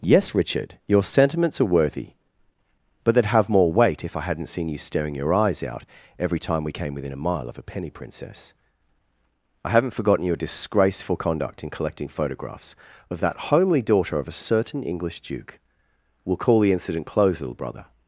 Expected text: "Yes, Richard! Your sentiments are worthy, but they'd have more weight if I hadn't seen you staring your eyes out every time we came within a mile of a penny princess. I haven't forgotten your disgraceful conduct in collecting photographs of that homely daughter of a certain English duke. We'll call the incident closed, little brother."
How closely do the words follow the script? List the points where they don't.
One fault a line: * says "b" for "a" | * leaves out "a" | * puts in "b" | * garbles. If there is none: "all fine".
all fine